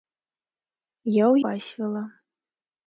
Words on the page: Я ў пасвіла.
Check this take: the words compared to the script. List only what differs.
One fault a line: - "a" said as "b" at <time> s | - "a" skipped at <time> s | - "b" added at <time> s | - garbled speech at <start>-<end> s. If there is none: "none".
none